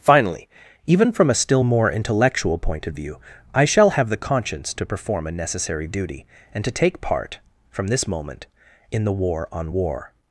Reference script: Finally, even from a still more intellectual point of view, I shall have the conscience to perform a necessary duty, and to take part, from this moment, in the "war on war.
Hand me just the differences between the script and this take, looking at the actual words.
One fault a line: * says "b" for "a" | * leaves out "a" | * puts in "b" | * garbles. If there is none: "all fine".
all fine